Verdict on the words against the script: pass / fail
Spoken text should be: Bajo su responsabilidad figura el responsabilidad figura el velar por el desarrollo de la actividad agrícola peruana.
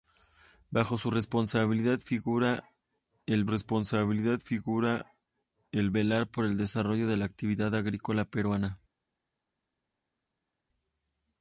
pass